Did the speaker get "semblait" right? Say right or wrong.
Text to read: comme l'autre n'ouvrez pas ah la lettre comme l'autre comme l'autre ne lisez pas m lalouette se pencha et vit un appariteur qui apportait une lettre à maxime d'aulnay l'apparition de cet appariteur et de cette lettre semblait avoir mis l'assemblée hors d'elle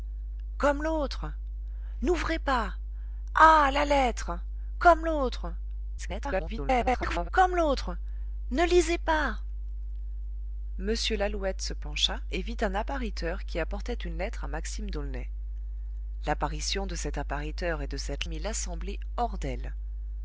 wrong